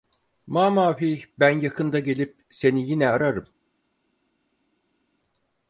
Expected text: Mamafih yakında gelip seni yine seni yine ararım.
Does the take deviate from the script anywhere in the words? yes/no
yes